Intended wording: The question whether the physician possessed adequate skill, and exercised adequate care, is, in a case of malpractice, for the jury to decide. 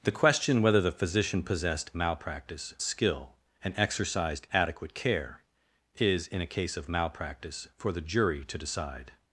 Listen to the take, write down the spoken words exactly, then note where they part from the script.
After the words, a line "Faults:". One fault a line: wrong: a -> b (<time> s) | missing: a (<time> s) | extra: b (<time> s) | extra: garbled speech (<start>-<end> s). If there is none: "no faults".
The question whether the physician possessed malpractice skill, and exercised adequate care, is, in a case of malpractice, for the jury to decide.
Faults:
wrong: adequate -> malpractice (1.9 s)